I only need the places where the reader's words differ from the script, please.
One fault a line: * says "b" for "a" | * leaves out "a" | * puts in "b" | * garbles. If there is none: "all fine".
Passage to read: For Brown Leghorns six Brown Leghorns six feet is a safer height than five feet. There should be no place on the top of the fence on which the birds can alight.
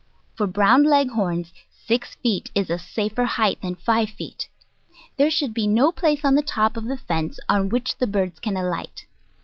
* leaves out "Brown Leghorns six"